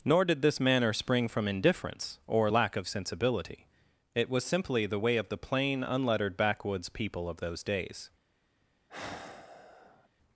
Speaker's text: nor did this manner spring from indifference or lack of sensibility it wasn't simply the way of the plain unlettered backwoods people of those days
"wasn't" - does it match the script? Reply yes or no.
no